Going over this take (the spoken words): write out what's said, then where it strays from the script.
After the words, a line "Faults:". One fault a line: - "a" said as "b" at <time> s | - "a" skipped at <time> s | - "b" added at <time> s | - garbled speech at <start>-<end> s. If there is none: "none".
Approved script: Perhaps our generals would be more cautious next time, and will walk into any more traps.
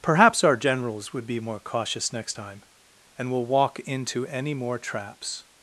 Perhaps our generals would be more cautious next time, and will walk into any more traps.
Faults:
none